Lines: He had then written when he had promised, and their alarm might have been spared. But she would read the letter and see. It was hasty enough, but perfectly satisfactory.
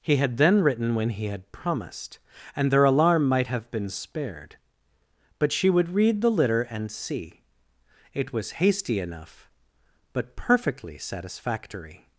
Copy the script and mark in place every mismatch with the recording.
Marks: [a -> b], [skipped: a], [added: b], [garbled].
He had then written when he had promised, and their alarm might have been spared. But she would read the [letter -> litter] and see. It was hasty enough, but perfectly satisfactory.